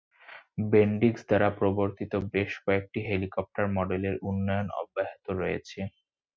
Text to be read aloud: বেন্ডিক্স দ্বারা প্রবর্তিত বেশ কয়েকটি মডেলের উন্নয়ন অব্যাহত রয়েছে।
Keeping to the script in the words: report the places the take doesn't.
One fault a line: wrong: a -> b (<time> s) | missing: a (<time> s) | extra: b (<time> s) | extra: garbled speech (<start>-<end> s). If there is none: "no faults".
extra: হেলিকপ্টার (3.1 s)